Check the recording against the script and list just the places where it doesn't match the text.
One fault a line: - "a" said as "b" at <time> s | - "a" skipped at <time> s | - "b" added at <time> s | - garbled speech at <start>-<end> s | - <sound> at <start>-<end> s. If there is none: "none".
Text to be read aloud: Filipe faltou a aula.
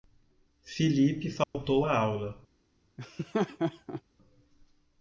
- dropout at 1.4-1.5 s
- laugh at 3.0-4.0 s